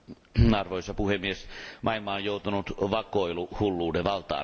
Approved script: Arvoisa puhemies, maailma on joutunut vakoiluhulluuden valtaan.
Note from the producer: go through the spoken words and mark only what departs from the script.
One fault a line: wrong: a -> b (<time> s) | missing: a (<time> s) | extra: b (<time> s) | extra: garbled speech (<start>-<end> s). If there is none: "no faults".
no faults